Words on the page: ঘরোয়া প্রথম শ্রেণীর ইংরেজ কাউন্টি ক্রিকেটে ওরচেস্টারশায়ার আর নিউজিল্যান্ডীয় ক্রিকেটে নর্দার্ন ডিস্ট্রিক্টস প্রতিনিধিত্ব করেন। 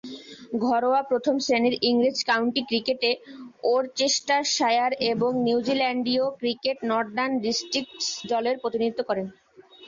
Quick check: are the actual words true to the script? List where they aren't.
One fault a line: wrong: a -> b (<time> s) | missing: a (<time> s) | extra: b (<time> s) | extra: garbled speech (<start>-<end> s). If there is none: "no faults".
wrong: আর -> এবং (5.1 s)
extra: দলের (8.3 s)